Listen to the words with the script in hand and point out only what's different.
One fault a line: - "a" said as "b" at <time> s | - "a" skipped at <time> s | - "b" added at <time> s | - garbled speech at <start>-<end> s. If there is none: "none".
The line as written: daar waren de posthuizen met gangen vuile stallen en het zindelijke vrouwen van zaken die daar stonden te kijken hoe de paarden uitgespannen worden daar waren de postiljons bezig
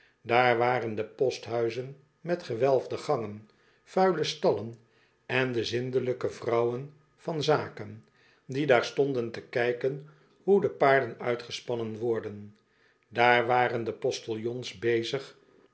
- "gewelfde" added at 2.4 s
- "het" said as "de" at 5.5 s